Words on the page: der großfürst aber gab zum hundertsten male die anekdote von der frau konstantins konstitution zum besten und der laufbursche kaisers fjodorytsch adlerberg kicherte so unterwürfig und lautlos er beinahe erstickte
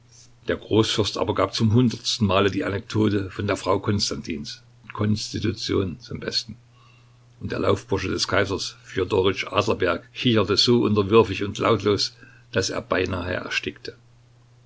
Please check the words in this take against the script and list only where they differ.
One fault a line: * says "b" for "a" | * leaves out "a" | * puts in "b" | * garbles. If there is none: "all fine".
* puts in "des"
* puts in "daß"